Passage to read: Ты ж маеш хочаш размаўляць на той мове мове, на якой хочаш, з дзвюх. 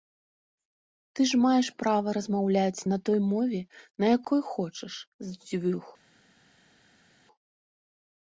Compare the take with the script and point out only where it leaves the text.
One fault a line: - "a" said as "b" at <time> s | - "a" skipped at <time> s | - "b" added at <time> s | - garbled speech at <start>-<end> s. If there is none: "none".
- "хочаш" said as "права" at 1.8 s
- "мове" skipped at 3.6 s